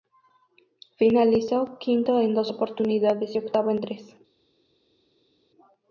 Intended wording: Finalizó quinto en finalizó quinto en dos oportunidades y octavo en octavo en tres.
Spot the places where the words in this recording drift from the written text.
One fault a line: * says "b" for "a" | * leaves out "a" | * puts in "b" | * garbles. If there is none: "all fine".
* leaves out "finalizó quinto en"
* leaves out "octavo en"